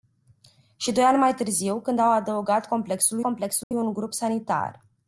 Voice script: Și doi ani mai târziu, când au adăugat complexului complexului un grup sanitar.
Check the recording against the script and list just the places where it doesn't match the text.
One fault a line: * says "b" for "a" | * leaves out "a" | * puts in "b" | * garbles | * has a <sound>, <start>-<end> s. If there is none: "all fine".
* has a dropout, 3.6-3.7 s